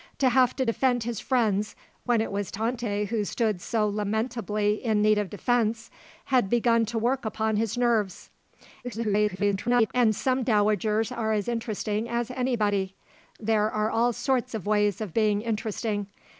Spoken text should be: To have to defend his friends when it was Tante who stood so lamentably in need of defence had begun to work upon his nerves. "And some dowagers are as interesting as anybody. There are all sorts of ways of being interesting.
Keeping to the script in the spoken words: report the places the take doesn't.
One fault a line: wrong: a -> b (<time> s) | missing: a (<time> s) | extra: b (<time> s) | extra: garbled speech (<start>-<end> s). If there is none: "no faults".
extra: garbled speech (8.8-9.9 s)